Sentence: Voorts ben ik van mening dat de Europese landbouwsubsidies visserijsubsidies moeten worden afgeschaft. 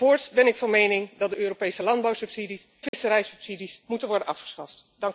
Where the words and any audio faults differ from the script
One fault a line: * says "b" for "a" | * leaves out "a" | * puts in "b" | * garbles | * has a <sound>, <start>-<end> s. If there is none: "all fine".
* has a dropout, 2.9-2.9 s